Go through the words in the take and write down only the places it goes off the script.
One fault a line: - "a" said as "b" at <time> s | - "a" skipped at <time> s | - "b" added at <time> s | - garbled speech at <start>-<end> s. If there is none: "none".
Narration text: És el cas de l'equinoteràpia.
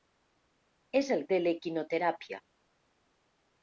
- "cas" skipped at 1.2 s